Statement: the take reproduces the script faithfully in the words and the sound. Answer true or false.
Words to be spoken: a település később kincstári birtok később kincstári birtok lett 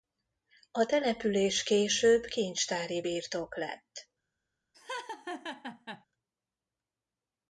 false